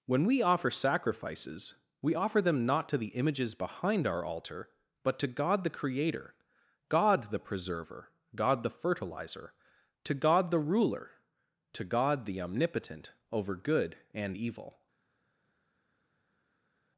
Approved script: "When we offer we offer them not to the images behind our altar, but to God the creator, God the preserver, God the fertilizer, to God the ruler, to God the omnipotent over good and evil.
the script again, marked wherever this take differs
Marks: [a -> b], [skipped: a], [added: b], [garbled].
"When we offer [added: sacrifices] we offer them not to the images behind our altar, but to God the creator, God the preserver, God the fertilizer, to God the ruler, to God the omnipotent over good and evil.